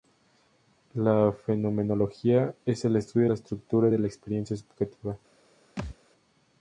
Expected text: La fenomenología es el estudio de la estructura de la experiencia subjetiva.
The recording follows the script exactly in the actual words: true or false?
true